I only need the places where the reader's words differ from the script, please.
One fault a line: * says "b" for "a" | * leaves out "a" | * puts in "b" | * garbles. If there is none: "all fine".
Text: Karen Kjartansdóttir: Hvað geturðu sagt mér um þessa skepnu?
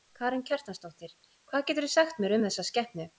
all fine